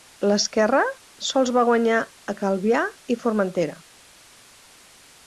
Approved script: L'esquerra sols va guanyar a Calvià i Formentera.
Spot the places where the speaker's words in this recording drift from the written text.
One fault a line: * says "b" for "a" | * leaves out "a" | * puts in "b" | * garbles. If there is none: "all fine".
all fine